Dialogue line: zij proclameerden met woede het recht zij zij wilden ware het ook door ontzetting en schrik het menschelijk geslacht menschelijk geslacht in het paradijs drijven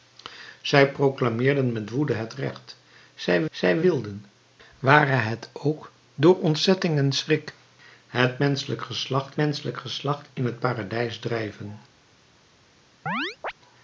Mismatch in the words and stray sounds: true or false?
true